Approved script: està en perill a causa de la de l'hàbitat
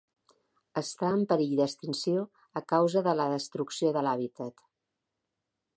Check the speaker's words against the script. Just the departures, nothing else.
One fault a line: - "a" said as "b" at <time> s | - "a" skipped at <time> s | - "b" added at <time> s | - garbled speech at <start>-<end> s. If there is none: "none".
- "d'extinció" added at 1.6 s
- "destrucció" added at 3.3 s